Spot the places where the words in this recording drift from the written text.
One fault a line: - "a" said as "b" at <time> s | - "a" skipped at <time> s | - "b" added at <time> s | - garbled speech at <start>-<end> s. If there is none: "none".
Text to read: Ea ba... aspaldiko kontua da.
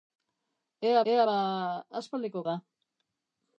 - "ea" added at 1.1 s
- "kontua" skipped at 2.4 s